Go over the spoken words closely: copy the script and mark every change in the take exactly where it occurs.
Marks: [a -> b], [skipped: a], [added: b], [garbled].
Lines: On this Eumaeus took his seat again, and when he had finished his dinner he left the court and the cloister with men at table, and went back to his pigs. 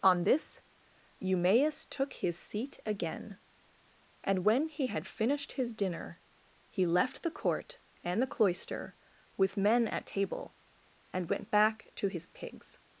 On this Eumaeus took his seat again, and when he had finished his dinner he left the court and the cloister with men at table, and went back to his pigs.